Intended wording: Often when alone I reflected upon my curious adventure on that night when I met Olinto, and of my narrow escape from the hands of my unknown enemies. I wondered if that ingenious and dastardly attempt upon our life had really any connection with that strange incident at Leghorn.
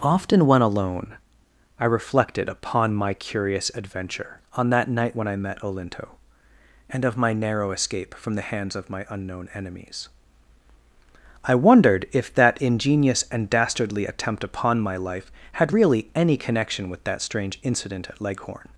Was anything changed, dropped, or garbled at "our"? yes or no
yes